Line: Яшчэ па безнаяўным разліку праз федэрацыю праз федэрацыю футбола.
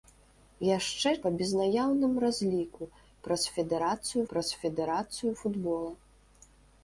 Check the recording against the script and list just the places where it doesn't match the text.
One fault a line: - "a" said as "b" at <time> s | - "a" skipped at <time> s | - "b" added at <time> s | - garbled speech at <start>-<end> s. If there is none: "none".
none